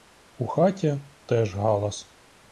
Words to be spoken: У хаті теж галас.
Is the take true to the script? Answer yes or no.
yes